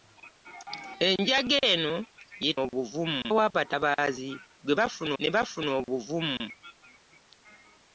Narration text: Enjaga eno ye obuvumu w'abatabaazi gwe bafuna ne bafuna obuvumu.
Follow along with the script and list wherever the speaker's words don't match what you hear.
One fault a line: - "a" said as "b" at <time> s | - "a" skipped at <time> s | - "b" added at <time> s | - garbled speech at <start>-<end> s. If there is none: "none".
none